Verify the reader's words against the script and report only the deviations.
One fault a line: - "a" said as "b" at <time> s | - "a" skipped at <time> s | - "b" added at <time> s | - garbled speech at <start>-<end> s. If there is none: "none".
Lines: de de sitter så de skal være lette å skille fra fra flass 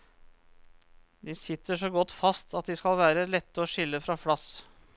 - "de" skipped at 1.4 s
- "godt fast at" added at 1.9 s
- "fra" skipped at 4.1 s